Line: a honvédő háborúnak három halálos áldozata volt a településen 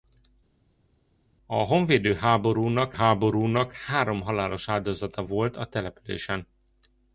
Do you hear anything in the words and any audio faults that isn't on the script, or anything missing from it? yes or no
yes